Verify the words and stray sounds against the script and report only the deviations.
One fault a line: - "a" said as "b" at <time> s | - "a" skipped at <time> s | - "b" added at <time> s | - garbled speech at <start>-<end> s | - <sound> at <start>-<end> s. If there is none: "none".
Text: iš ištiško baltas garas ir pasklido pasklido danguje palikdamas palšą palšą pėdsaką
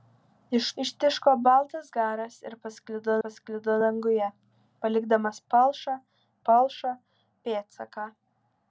none